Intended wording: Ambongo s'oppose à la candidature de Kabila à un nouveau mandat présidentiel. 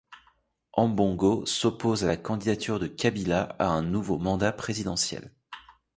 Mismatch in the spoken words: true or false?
false